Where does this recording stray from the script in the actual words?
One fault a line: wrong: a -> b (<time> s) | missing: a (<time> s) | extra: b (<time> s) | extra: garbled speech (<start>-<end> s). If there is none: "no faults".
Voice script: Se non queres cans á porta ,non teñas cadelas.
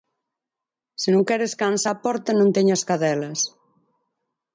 no faults